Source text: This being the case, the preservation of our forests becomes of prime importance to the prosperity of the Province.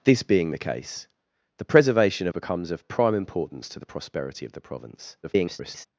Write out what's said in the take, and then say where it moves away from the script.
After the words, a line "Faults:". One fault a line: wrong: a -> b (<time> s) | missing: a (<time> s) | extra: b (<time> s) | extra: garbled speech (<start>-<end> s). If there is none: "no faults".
This being the case, the preservation of becomes of prime importance to the prosperity of the Province. [garbled]
Faults:
missing: our forests (2.3 s)
extra: garbled speech (5.2-5.9 s)